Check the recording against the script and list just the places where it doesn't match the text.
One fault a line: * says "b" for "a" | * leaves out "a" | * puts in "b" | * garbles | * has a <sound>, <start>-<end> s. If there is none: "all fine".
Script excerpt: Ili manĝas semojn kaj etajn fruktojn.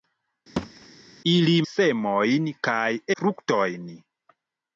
* has a thud, 0.6-0.9 s
* leaves out "manĝas"
* leaves out "etajn"